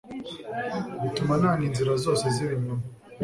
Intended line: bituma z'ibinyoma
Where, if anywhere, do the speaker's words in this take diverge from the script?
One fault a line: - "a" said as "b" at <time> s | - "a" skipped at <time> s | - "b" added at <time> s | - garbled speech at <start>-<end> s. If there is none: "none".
- "nanga inzira zose" added at 1.4 s